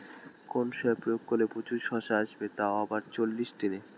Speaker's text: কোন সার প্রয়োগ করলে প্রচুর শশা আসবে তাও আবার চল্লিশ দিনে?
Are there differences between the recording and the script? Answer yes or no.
no